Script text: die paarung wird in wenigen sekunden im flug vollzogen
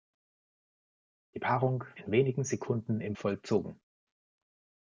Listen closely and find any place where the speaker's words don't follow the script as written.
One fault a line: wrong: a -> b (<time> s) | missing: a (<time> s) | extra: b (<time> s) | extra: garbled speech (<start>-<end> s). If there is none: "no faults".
missing: wird (1.8 s)
missing: flug (3.2 s)